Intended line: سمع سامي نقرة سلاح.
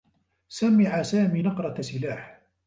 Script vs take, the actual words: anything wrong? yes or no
no